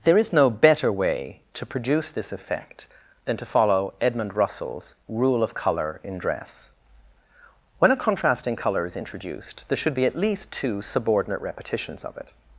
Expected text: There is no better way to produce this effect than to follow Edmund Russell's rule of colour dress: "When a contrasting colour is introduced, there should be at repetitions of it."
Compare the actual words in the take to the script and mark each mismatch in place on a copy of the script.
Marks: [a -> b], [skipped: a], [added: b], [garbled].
There is no better way to produce this effect than to follow Edmund Russell's rule of colour [added: in] dress: "When a contrasting colour is introduced, there should be at [added: least two subordinate] repetitions of it."